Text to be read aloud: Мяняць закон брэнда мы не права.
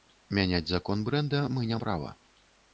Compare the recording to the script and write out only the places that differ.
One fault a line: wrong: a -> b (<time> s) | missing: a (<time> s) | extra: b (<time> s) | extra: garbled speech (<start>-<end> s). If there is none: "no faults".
no faults